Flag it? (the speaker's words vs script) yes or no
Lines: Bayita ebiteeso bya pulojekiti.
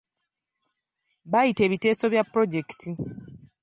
no